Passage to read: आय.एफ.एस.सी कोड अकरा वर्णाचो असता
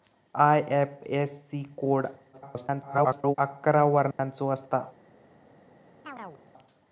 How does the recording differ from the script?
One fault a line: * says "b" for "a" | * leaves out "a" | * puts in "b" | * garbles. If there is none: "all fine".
* garbles